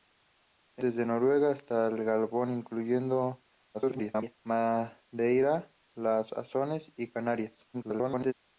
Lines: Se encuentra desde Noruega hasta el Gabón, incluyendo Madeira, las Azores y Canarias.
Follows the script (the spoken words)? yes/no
no